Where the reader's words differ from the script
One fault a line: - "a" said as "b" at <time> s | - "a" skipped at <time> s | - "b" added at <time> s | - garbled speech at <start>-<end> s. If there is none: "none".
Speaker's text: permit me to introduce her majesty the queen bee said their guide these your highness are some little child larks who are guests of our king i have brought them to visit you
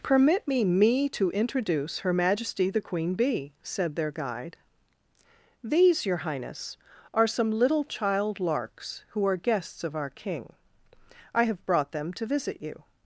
- "me" added at 0.6 s